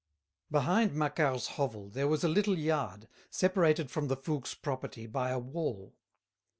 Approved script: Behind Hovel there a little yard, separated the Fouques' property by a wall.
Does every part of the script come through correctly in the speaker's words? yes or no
no